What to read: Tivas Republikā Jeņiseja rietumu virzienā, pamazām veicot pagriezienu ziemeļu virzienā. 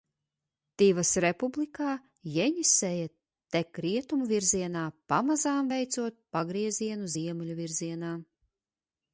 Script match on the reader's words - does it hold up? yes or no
no